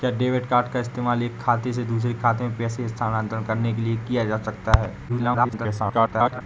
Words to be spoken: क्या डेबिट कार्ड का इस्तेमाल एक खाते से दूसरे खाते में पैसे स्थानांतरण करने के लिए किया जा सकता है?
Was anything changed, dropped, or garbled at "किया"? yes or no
no